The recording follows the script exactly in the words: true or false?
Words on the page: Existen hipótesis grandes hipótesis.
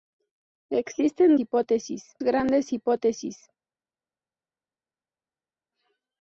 true